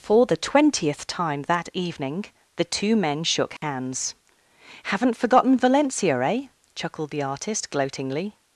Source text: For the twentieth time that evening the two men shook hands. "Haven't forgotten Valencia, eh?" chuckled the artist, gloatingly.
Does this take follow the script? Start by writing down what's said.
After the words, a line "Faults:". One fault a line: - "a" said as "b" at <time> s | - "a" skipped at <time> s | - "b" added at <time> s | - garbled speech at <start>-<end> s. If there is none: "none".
For the twentieth time that evening the two men shook hands. "Haven't forgotten Valencia, eh?" chuckled the artist, gloatingly.
Faults:
none